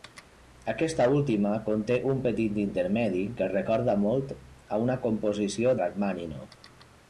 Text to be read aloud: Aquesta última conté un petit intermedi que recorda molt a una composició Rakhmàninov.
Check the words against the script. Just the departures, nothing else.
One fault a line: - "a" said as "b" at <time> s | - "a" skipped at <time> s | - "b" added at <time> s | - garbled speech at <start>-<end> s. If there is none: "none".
none